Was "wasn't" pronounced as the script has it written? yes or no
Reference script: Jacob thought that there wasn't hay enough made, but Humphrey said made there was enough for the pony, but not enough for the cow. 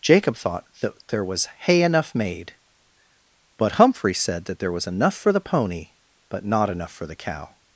no